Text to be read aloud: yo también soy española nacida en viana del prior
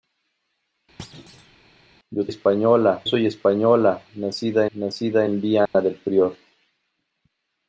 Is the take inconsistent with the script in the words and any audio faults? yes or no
yes